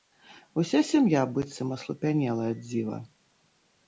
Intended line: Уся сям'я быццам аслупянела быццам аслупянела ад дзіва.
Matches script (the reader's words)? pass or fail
fail